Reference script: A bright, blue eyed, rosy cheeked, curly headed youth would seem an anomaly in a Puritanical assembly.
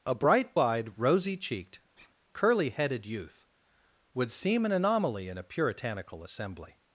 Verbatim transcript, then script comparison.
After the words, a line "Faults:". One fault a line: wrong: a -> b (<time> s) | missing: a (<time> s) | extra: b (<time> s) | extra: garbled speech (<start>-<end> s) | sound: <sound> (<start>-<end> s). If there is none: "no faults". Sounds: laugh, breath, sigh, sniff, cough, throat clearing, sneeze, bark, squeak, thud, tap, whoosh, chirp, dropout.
A bright, eyed, rosy cheeked, curly headed youth would seem an anomaly in a Puritanical assembly.
Faults:
missing: blue (0.6 s)
sound: sigh (1.9-2.1 s)